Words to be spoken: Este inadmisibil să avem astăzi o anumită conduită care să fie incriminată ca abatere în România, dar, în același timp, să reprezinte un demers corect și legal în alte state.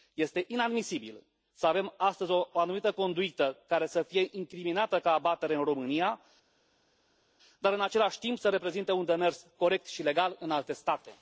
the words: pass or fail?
pass